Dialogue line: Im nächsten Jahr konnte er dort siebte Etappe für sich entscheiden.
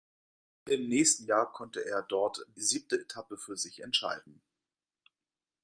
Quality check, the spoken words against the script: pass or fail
pass